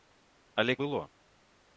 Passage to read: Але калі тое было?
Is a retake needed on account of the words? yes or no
yes